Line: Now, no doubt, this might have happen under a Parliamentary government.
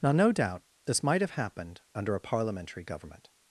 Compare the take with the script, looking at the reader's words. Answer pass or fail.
fail